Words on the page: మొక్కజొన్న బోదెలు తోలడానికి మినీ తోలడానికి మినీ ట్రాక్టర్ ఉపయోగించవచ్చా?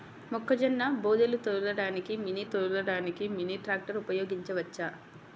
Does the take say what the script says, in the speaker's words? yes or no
yes